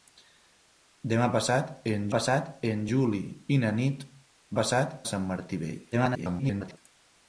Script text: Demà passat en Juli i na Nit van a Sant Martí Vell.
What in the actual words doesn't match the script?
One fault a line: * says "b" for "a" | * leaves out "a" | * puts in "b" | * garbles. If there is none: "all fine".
* puts in "passat en"
* says "passat" for "van"
* garbles